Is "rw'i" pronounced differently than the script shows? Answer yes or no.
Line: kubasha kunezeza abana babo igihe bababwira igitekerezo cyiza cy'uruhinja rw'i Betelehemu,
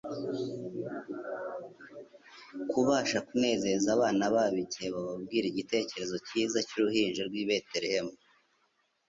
no